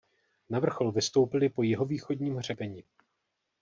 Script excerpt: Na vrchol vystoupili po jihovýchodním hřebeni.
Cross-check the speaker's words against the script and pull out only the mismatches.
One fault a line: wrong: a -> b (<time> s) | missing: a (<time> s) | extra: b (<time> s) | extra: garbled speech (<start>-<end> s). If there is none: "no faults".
no faults